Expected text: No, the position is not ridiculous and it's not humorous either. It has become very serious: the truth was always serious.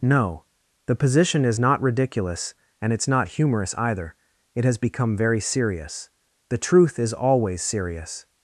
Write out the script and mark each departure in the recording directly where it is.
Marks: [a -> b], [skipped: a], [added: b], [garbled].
No, the position is not ridiculous and it's not humorous either. It has become very serious: the truth [was -> is] always serious.